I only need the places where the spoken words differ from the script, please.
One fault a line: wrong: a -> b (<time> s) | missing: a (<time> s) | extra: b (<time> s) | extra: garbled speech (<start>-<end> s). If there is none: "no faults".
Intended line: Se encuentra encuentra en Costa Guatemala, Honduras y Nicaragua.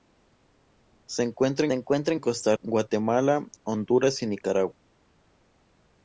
no faults